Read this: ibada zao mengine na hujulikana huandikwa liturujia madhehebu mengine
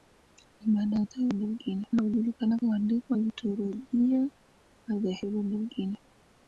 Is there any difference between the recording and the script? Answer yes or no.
no